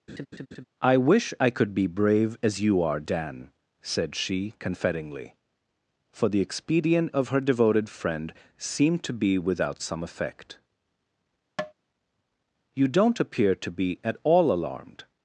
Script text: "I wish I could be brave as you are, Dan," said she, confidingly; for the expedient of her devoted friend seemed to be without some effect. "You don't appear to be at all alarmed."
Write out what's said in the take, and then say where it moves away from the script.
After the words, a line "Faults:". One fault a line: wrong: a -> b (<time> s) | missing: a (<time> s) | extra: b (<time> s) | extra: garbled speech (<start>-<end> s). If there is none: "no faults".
"I wish I could be brave as you are, Dan," said she, confidingly; for the expedient of her devoted friend seemed to be without some effect. "You don't appear to be at all alarmed."
Faults:
no faults